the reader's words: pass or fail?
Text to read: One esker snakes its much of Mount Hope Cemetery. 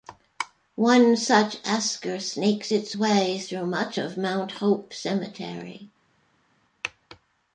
fail